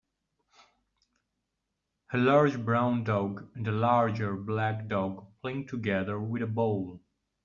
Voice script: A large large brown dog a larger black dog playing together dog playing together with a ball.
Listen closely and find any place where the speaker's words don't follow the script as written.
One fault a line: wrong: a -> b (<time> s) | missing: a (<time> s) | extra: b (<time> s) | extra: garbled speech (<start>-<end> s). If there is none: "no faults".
missing: large (2.6 s)
extra: and (3.5 s)
missing: dog playing together (6.2 s)